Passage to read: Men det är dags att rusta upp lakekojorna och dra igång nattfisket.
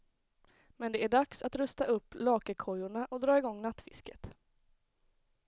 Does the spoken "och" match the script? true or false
true